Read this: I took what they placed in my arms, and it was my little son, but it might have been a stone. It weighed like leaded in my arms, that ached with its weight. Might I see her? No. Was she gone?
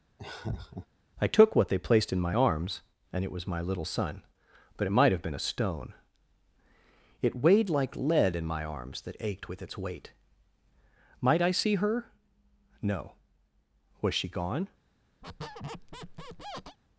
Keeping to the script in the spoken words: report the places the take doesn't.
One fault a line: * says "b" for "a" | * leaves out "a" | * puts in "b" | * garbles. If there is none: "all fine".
* says "lead" for "leaded"